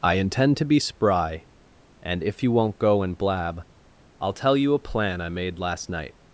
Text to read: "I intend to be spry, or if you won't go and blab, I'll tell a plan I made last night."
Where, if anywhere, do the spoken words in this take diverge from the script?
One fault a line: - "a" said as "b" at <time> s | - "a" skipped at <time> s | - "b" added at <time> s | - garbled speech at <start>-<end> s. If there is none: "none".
- "or" said as "and" at 2.0 s
- "you" added at 4.6 s